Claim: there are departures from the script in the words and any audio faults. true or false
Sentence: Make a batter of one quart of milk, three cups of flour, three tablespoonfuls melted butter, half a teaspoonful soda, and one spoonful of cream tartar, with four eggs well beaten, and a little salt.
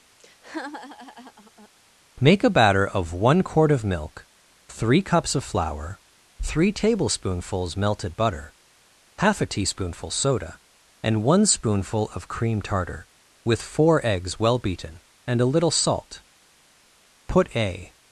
true